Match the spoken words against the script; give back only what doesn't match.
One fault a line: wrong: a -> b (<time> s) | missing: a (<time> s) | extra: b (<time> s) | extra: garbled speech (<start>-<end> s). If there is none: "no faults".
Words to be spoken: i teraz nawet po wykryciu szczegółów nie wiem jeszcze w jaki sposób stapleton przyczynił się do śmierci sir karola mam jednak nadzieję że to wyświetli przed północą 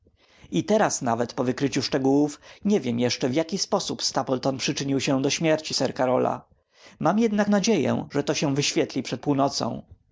extra: się (8.3 s)